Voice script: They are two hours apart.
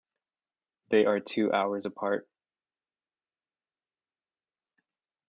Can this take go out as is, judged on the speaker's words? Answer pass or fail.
pass